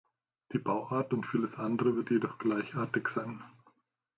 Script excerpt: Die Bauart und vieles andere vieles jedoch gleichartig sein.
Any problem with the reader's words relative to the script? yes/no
yes